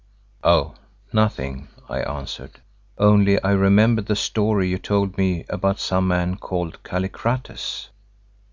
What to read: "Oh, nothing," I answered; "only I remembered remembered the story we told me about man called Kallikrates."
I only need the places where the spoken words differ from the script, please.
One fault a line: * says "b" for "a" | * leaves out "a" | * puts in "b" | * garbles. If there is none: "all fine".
* leaves out "remembered"
* says "you" for "we"
* puts in "some"